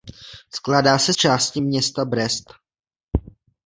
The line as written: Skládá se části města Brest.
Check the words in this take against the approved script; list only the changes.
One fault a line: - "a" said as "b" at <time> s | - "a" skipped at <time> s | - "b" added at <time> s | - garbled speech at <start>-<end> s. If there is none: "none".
none